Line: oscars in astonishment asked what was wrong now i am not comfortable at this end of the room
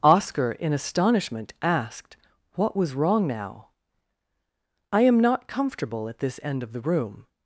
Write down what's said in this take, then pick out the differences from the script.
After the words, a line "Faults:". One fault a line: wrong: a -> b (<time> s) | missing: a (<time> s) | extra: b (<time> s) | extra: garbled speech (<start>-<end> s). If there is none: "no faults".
oscar in astonishment asked what was wrong now i am not comfortable at this end of the room
Faults:
wrong: oscars -> oscar (0.0 s)